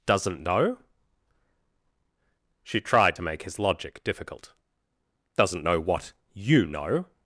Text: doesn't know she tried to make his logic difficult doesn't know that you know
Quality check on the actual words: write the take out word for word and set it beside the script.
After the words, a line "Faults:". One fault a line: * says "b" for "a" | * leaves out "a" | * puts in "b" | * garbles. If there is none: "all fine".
doesn't know she tried to make his logic difficult doesn't know what you know
Faults:
* says "what" for "that"